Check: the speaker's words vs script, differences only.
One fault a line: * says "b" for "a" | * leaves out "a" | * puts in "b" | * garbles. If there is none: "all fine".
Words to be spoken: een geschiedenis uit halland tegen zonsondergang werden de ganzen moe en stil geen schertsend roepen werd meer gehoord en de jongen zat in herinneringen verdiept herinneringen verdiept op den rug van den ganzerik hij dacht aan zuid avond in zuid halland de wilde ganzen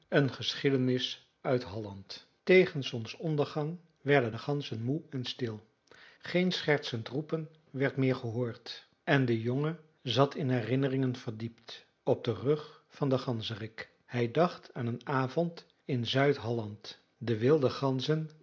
* leaves out "herinneringen verdiept"
* says "een" for "zuid"